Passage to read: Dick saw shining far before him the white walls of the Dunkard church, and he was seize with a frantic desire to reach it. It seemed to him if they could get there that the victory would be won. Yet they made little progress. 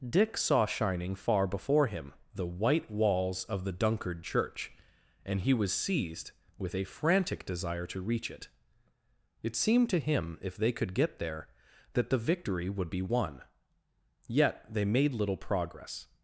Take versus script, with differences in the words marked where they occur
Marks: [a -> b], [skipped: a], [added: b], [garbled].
Dick saw shining far before him the white walls of the Dunkard church, and he was [seize -> seized] with a frantic desire to reach it. It seemed to him if they could get there that the victory would be won. Yet they made little progress.